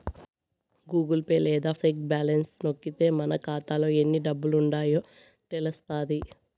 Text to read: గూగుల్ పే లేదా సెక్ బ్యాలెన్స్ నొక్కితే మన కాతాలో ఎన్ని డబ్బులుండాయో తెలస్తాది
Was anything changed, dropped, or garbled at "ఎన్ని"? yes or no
no